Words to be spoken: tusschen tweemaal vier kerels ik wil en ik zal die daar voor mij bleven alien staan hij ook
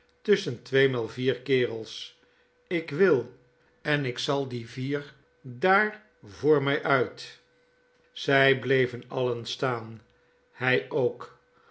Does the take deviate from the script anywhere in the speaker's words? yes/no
yes